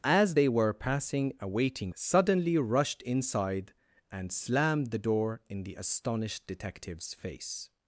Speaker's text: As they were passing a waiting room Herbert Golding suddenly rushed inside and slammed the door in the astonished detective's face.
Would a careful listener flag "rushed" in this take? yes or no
no